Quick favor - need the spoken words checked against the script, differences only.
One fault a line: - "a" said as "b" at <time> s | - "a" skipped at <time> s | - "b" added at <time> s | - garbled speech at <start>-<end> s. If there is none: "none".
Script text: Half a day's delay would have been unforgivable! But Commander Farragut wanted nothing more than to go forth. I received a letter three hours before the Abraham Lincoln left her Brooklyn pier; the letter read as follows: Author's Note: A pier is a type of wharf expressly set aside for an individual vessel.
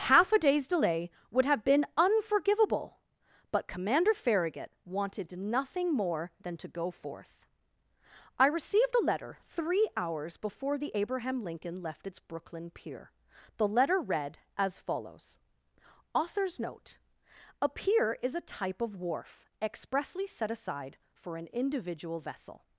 - "her" said as "its" at 12.1 s